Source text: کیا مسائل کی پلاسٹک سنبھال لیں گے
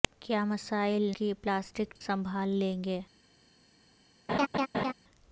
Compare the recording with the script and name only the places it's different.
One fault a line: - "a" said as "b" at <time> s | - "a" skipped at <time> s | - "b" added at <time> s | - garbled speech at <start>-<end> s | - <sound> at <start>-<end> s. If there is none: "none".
- laugh at 4.3-4.9 s